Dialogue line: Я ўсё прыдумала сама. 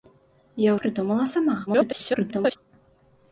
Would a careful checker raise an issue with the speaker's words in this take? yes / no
yes